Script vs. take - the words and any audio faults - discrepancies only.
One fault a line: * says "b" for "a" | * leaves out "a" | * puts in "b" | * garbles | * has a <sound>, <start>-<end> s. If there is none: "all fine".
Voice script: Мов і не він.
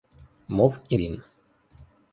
* leaves out "не"